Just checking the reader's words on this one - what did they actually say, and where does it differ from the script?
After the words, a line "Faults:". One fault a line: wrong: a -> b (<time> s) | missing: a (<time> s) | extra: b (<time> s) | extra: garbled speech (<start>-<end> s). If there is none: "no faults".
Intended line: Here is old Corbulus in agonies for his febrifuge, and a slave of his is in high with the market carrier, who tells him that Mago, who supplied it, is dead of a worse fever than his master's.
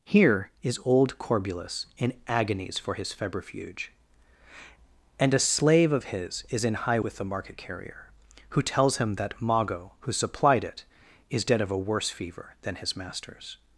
Here is old Corbulus in agonies for his febrifuge, and a slave of his is in high with the market carrier, who tells him that Mago, who supplied it, is dead of a worse fever than his master's.
Faults:
no faults